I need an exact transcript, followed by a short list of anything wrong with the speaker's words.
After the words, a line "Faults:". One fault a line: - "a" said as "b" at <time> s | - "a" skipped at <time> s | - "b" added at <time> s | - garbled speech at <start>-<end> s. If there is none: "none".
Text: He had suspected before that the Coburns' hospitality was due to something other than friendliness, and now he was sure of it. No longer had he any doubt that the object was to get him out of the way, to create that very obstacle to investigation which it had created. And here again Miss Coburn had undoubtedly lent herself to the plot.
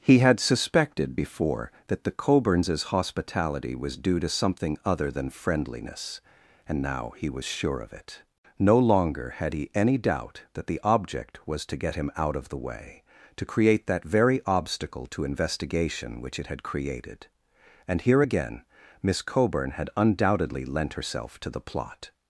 He had suspected before that the Coburns' hospitality was due to something other than friendliness, and now he was sure of it. No longer had he any doubt that the object was to get him out of the way, to create that very obstacle to investigation which it had created. And here again Miss Coburn had undoubtedly lent herself to the plot.
Faults:
none